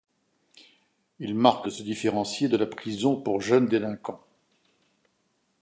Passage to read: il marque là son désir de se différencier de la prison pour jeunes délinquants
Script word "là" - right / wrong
wrong